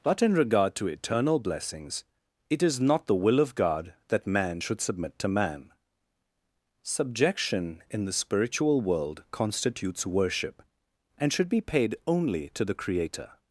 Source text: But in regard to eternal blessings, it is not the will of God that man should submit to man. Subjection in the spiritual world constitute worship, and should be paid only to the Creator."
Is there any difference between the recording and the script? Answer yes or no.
yes